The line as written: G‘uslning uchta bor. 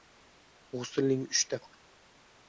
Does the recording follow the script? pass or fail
pass